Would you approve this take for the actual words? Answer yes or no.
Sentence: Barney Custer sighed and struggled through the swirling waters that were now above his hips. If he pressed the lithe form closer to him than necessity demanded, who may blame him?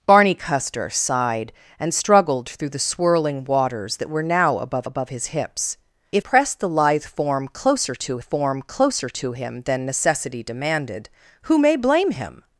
no